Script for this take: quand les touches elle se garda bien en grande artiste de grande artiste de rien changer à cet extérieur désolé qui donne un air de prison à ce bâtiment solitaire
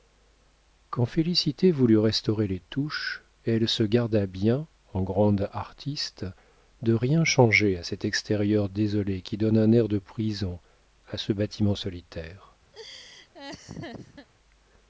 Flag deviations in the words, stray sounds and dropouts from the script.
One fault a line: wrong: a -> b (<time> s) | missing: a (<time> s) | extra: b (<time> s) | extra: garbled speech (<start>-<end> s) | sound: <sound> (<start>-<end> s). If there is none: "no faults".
extra: félicité voulut restaurer (1.1 s)
missing: grande artiste de (6.9 s)
sound: laugh (12.7-14.3 s)